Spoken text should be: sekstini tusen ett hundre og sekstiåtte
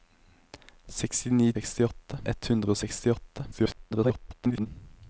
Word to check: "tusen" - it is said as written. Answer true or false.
false